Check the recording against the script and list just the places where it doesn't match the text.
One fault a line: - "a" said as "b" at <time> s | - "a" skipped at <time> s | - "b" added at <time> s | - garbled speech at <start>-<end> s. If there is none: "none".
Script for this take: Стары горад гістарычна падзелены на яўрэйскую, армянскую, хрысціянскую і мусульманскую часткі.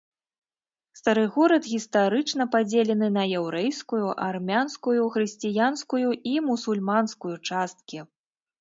none